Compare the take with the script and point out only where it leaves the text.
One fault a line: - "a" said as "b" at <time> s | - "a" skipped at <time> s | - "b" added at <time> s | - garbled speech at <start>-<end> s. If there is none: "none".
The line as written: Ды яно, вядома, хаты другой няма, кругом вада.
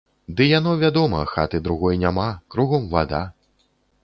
none